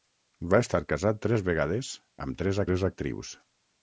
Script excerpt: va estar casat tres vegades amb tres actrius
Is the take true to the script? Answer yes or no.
no